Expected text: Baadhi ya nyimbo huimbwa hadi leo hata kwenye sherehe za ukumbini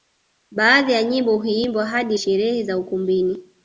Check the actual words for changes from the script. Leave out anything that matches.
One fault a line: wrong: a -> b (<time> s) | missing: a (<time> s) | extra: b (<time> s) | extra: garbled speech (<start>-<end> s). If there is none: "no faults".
missing: leo hata kwenye (2.2 s)